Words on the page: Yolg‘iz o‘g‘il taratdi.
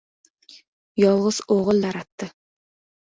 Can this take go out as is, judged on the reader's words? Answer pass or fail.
pass